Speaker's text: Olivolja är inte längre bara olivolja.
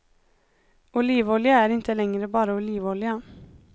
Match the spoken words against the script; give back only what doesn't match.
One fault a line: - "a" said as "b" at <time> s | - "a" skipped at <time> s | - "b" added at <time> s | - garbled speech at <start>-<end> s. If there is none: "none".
none